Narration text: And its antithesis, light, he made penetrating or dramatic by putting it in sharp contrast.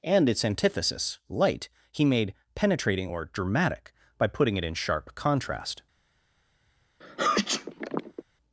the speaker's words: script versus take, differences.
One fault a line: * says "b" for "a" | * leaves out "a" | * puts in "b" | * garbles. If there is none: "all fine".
all fine